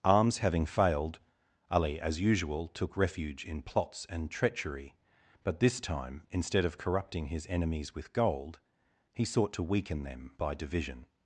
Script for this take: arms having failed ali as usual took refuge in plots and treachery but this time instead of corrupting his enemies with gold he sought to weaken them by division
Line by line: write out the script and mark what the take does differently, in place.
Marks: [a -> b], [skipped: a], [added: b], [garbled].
arms having failed ali as usual took refuge in plots and treachery but this time instead of corrupting his enemies with gold he sought to weaken them by division